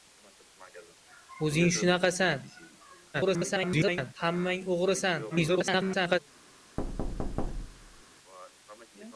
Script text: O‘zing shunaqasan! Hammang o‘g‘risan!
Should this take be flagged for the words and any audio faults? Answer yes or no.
yes